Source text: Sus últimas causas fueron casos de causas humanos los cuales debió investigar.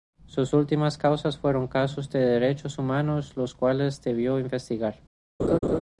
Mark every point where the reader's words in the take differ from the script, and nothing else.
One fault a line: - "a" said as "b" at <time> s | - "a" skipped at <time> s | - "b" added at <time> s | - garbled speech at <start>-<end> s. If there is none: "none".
- "causas" said as "derechos" at 2.2 s